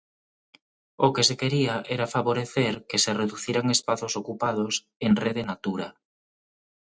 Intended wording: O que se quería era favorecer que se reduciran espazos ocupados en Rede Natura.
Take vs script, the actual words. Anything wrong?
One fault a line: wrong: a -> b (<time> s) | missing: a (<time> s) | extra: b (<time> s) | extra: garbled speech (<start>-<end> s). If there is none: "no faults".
no faults